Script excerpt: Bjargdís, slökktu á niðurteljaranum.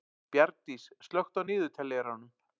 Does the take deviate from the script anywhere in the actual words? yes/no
no